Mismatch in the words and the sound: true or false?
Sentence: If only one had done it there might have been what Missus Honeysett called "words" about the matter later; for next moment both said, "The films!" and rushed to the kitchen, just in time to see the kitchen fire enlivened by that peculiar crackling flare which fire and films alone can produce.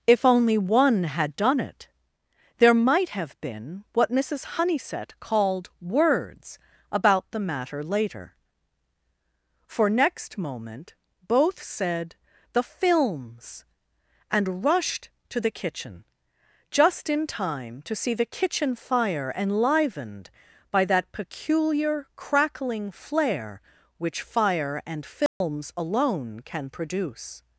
true